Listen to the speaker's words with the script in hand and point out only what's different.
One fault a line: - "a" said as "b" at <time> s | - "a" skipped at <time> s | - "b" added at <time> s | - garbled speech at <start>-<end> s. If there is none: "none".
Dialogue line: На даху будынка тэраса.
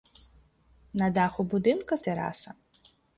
none